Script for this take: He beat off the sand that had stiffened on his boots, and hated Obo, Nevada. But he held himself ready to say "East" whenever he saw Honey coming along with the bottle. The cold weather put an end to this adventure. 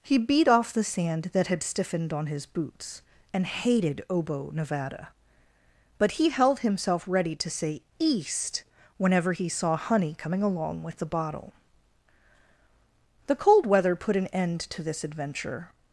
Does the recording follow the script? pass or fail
pass